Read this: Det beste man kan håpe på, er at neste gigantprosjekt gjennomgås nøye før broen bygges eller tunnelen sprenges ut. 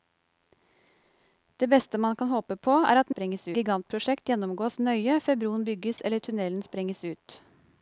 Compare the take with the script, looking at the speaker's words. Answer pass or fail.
fail